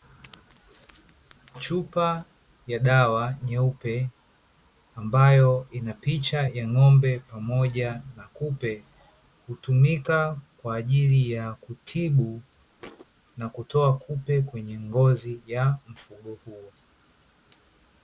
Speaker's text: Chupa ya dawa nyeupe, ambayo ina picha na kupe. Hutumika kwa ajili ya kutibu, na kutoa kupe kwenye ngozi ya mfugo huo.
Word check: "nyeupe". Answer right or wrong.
right